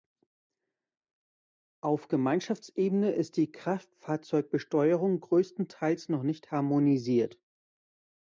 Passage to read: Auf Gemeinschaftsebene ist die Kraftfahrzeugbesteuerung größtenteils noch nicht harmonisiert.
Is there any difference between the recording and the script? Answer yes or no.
no